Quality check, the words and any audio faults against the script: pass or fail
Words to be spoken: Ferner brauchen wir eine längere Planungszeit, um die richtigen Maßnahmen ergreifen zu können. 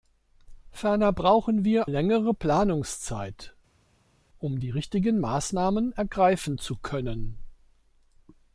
fail